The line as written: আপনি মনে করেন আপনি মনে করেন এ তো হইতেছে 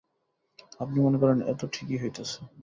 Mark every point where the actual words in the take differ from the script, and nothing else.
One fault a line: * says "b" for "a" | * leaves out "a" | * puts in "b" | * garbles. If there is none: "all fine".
* leaves out "আপনি মনে করেন"
* puts in "ঠিকই"